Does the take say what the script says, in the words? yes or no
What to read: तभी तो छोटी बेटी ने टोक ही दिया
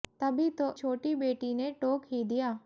yes